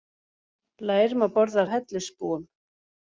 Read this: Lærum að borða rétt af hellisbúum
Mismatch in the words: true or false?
true